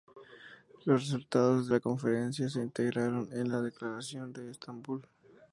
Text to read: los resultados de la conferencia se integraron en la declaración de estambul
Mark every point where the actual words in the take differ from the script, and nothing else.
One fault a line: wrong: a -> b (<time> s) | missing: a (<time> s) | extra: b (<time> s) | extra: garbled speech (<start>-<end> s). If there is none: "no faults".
no faults